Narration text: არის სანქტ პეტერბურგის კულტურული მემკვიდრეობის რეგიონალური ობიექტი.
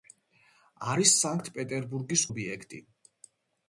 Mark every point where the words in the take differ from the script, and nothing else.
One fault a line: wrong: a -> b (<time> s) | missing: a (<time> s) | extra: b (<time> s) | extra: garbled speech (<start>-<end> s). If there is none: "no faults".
missing: კულტურული მემკვიდრეობის რეგიონალური (2.2 s)